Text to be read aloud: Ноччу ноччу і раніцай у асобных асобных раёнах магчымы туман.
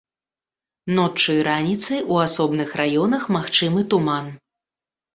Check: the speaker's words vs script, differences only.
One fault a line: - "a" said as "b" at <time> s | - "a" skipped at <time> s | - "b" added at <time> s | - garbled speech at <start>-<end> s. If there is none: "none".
- "ноччу" skipped at 1.4 s
- "асобных" skipped at 2.7 s